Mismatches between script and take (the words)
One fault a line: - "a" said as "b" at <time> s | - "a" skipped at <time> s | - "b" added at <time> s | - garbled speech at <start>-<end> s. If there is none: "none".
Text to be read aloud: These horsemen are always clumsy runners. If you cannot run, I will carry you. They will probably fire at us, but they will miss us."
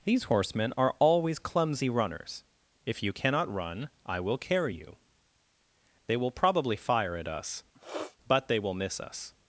none